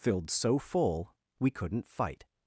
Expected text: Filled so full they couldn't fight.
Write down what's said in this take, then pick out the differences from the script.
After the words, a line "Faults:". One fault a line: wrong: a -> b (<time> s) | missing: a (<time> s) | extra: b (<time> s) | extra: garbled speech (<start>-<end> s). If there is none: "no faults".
Filled so full we couldn't fight.
Faults:
wrong: they -> we (1.4 s)